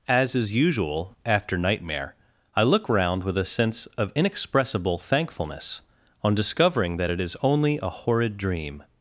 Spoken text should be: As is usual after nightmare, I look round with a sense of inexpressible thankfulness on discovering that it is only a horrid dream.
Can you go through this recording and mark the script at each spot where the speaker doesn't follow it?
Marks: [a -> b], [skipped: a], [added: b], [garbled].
As is usual after nightmare, I look round with a sense of inexpressible thankfulness on discovering that it is only a horrid dream.